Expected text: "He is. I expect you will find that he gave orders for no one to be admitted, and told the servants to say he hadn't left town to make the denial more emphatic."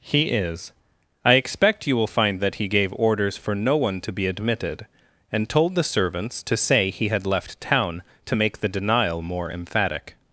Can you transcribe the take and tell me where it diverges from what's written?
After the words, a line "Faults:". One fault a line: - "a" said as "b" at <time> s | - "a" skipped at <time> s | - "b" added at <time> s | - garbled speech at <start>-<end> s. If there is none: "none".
"He is. I expect you will find that he gave orders for no one to be admitted, and told the servants to say he had left town to make the denial more emphatic."
Faults:
- "hadn't" said as "had" at 7.1 s